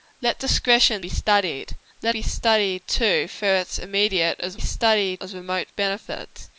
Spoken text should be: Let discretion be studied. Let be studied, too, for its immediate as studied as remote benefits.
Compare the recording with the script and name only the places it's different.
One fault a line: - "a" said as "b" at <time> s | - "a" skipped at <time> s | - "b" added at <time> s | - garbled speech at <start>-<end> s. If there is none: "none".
none